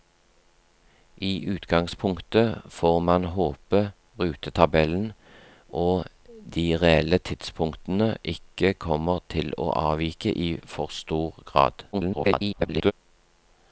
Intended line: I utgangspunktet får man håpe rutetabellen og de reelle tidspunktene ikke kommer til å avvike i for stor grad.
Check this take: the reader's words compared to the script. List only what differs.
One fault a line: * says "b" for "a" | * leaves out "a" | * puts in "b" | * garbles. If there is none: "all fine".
* garbles